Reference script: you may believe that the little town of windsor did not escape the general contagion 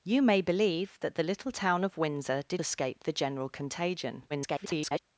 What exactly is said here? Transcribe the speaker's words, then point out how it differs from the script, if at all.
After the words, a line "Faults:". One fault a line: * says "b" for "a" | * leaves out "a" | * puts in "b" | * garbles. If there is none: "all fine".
you may believe that the little town of windsor did escape the general contagion [garbled]
Faults:
* leaves out "not"
* garbles